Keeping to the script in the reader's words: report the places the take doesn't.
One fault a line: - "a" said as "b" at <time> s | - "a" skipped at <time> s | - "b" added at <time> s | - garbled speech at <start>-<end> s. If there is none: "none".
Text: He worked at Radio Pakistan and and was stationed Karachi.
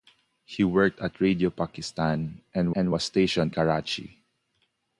none